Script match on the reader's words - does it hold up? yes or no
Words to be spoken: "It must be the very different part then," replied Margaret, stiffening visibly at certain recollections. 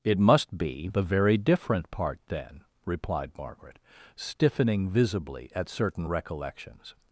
yes